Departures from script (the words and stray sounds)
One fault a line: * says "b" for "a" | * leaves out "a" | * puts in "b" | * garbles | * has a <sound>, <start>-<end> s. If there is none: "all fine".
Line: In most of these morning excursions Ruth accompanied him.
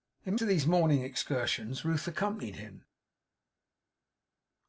* leaves out "most"